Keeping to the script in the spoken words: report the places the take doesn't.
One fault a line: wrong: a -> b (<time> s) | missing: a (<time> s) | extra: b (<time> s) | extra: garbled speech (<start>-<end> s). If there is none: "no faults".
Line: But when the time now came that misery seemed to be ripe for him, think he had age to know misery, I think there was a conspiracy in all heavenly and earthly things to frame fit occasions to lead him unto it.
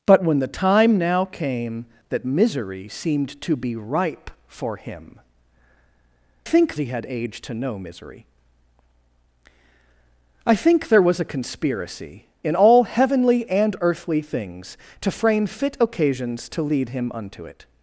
no faults